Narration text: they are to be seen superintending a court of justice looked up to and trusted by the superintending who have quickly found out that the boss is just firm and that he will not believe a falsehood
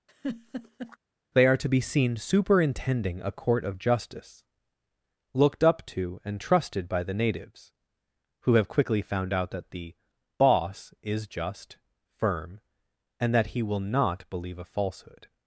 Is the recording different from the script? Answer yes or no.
yes